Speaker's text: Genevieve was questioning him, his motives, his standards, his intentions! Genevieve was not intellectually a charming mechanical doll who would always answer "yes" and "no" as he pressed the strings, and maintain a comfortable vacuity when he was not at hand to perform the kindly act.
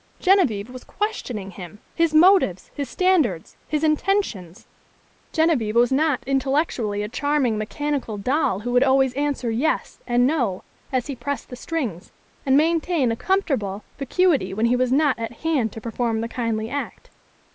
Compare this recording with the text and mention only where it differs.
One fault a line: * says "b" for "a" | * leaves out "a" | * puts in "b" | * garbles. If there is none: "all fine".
all fine